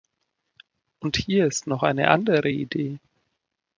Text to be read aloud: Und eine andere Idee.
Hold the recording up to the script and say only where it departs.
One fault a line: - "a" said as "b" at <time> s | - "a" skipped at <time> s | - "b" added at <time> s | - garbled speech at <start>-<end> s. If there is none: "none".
- "hier ist noch" added at 1.2 s